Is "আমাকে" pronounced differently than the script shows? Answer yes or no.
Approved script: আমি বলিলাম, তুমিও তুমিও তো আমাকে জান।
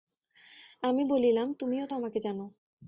no